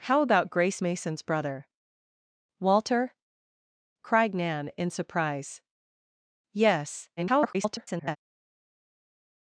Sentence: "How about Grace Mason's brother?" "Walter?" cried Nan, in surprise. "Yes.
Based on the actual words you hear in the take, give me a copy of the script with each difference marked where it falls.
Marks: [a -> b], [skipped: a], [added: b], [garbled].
"How about Grace Mason's brother?" "Walter?" cried Nan, in surprise. "Yes. [garbled]